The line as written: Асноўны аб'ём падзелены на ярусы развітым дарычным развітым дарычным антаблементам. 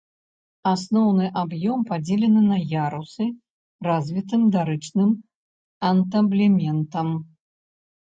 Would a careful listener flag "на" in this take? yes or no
no